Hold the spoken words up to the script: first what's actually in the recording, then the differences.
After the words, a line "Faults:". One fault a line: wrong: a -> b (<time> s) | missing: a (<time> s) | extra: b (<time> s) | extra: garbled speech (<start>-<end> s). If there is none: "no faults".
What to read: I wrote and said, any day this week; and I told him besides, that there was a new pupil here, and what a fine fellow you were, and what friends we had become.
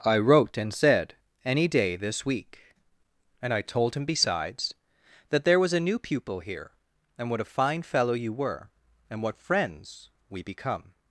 I wrote and said, any day this week; and I told him besides, that there was a new pupil here, and what a fine fellow you were, and what friends we become.
Faults:
missing: had (10.4 s)